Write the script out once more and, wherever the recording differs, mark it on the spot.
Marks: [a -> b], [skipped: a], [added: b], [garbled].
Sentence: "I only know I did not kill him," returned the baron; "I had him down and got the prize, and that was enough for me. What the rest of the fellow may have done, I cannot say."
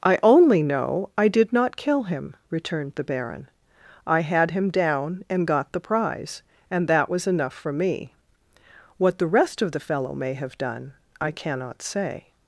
"I only know I did not kill him," returned the baron; "I had him down and got the prize, and that was enough for me. What the rest of the fellow may have done, I cannot say."